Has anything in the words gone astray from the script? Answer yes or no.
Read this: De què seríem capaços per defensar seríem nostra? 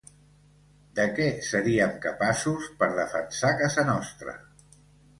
yes